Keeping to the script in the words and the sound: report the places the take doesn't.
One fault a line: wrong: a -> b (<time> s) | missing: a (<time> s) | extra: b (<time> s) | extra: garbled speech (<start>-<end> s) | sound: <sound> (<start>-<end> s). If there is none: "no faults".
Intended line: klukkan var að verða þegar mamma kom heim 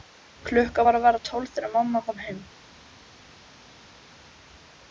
extra: tólf (1.3 s)